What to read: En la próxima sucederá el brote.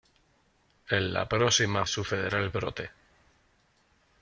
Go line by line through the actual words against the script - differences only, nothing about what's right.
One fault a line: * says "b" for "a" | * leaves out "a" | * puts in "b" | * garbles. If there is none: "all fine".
all fine